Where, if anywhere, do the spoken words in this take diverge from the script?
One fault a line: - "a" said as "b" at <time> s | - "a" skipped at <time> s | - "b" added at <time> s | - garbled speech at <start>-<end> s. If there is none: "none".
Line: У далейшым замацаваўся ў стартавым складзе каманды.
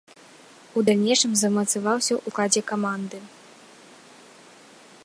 - "стартавым" skipped at 2.3 s